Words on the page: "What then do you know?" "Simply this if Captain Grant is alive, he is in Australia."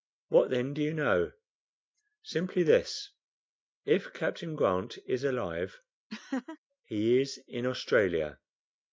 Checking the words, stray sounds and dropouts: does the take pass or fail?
fail